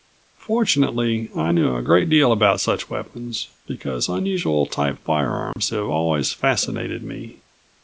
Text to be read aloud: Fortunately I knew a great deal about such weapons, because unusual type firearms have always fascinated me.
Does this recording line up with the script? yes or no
yes